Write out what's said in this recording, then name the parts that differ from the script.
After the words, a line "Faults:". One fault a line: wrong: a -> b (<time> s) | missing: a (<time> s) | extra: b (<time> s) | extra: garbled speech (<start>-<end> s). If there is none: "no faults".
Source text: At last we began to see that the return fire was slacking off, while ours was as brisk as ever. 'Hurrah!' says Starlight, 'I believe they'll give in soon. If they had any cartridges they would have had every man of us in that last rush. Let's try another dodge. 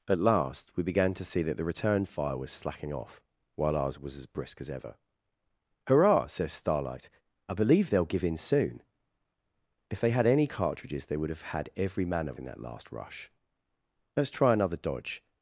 At last we began to see that the return fire was slacking off, while ours was as brisk as ever. 'Hurrah!' says Starlight, 'I believe they'll give in soon. If they had any cartridges they would have had every man of in that last rush. Let's try another dodge.
Faults:
missing: us (12.4 s)